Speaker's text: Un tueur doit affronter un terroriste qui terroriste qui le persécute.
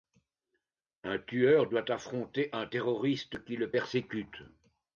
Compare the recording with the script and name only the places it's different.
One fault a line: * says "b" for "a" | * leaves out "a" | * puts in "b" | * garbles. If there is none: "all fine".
* leaves out "terroriste qui"